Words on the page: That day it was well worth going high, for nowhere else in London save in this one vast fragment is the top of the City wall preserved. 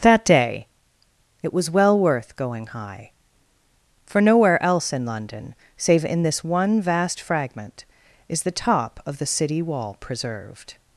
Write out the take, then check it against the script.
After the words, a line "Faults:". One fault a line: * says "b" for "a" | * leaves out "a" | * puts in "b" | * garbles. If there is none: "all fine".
That day it was well worth going high, for nowhere else in London save in this one vast fragment is the top of the City wall preserved.
Faults:
all fine